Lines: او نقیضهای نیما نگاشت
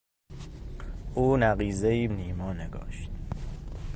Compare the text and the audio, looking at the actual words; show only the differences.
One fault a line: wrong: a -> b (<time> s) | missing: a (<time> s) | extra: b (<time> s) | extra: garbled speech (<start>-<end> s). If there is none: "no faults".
no faults